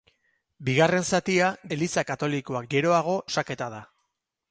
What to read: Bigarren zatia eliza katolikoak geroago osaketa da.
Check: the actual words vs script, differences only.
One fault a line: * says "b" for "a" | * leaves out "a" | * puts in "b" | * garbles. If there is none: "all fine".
all fine